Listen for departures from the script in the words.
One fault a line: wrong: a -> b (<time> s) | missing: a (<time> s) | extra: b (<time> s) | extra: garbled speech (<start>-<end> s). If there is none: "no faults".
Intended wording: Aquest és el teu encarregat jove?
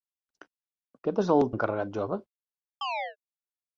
missing: teu (1.4 s)